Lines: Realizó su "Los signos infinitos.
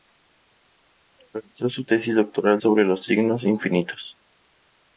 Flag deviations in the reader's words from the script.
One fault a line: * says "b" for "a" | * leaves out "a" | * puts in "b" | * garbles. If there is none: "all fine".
* puts in "tesis doctoral sobre"